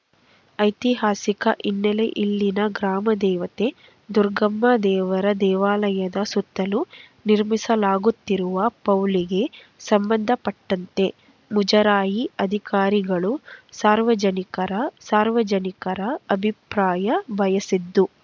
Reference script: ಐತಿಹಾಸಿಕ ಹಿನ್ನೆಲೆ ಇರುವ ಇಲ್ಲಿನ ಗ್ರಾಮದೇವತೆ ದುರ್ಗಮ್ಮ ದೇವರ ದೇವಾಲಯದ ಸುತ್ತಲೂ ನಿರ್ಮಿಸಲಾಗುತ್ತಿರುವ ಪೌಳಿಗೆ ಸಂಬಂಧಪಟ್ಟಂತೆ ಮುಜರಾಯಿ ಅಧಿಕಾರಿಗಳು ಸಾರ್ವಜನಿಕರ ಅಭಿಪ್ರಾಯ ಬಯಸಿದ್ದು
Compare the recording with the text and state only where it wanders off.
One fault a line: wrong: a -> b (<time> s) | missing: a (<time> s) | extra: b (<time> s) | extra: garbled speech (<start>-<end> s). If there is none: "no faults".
missing: ಇರುವ (2.0 s)
extra: ಸಾರ್ವಜನಿಕರ (15.0 s)